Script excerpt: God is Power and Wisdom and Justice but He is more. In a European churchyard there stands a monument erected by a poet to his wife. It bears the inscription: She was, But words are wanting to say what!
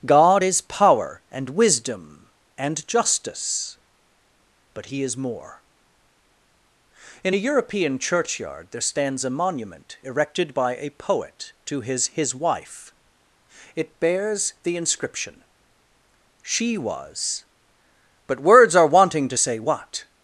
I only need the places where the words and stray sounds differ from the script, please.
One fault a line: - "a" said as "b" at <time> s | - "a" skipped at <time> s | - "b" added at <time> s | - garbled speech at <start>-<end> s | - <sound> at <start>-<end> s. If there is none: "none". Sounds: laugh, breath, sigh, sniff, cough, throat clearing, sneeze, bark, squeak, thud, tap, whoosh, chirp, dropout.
- "his" added at 12.1 s